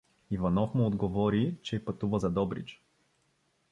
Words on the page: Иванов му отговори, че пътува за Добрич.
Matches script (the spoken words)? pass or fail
pass